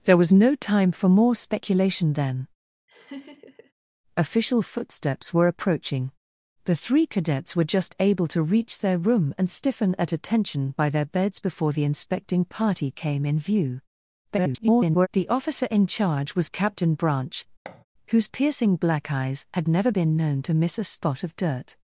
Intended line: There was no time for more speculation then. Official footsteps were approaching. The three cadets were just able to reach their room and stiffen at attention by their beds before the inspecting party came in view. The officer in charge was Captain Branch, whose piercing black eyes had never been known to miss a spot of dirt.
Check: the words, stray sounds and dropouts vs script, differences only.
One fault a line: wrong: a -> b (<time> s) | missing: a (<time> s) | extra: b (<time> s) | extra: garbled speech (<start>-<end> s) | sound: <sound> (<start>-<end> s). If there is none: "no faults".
sound: laugh (2.9-3.7 s)
extra: garbled speech (14.3-15.1 s)
sound: thud (17.6-17.8 s)